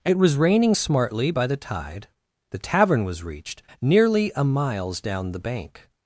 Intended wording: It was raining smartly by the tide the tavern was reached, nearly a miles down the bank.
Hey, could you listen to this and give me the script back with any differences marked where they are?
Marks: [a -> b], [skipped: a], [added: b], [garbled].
It was raining smartly by the tide the tavern was reached, nearly a miles down the bank.